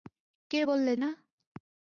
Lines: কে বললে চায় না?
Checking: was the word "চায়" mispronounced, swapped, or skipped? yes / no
yes